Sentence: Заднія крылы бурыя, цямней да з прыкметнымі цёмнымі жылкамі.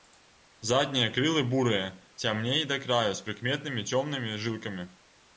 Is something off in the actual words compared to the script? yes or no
yes